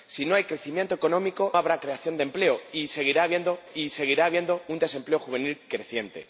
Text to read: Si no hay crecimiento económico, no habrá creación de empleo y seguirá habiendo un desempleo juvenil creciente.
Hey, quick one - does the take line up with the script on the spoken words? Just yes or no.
no